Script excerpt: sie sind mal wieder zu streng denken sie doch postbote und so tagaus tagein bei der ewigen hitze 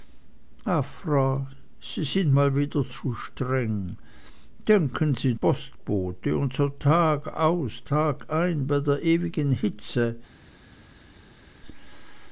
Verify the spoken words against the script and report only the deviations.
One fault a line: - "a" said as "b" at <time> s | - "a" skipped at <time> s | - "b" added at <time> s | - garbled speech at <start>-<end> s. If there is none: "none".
- "doch" skipped at 5.3 s